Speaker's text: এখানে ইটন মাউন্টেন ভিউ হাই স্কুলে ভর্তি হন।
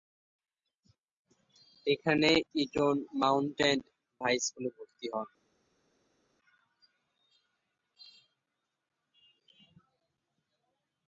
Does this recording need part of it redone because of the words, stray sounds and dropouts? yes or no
yes